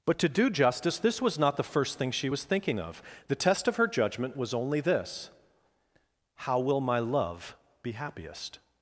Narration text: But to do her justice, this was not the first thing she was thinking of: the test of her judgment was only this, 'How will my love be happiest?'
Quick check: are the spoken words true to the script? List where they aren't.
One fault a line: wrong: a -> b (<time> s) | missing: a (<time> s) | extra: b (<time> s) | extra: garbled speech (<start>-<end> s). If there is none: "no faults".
missing: her (0.5 s)